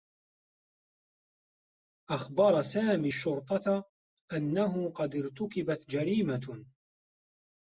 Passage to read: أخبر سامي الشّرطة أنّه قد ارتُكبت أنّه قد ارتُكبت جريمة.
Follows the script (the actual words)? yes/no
no